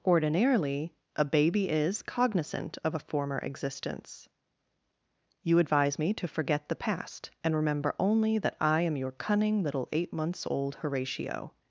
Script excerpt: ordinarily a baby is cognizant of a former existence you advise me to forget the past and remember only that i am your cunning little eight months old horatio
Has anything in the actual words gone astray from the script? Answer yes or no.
no